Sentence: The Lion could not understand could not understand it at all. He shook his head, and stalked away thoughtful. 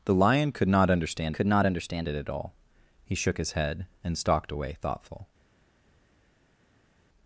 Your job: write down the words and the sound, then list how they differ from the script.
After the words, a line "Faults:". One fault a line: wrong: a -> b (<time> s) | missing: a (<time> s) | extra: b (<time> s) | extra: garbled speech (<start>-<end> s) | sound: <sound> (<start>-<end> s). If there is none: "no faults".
The Lion could not understand could not understand it at all. He shook his head, and stalked away thoughtful.
Faults:
no faults